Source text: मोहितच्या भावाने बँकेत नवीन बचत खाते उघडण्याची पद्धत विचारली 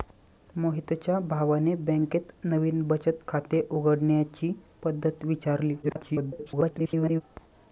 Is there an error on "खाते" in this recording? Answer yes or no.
no